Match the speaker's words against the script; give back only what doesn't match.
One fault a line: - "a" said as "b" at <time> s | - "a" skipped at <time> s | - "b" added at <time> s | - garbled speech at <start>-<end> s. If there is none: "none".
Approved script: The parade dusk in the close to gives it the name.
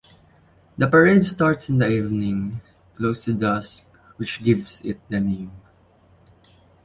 - "dusk" said as "starts" at 1.2 s
- "evening" added at 1.9 s
- "dusk which" added at 3.3 s